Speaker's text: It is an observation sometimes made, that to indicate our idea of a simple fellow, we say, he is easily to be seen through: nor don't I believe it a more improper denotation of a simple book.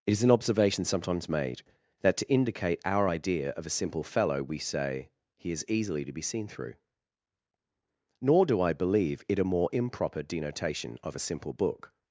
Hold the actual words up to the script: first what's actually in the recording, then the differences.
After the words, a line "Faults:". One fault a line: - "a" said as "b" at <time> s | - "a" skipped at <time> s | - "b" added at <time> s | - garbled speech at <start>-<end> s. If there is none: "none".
It is an observation sometimes made, that to indicate our idea of a simple fellow, we say, he is easily to be seen through: nor do I believe it a more improper denotation of a simple book.
Faults:
- "don't" said as "do" at 8.4 s